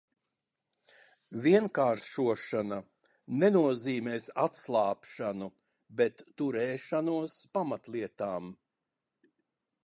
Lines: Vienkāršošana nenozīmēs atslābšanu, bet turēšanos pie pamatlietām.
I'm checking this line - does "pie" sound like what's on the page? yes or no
no